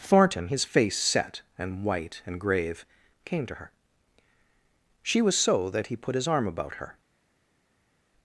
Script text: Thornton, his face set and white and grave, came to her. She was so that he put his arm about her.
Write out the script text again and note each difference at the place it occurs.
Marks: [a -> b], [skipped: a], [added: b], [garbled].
Thornton, his face set and white and grave, came to her. She was so that he put his arm about her.